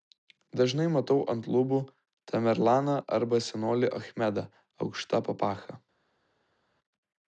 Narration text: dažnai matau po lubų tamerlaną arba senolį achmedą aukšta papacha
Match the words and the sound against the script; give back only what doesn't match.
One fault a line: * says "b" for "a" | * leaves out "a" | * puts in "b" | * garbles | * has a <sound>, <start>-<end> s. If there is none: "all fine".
* says "ant" for "po"